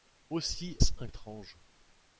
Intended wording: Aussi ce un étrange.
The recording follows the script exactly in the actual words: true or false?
true